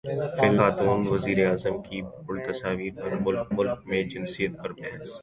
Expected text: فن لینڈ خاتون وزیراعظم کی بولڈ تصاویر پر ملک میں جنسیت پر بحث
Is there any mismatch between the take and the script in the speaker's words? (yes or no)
yes